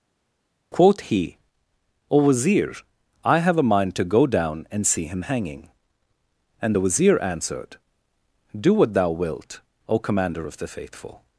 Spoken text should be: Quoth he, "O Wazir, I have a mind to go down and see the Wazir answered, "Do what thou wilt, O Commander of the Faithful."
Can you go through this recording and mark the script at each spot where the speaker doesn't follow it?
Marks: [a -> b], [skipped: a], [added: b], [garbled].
Quoth he, "O Wazir, I have a mind to go down and see [added: him hanging and] the Wazir answered, "Do what thou wilt, O Commander of the Faithful."